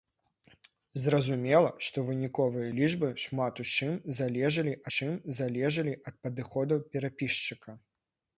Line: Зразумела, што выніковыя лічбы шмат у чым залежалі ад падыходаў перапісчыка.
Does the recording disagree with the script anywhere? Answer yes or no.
yes